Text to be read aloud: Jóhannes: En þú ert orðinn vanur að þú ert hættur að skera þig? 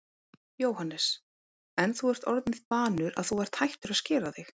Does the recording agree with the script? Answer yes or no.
yes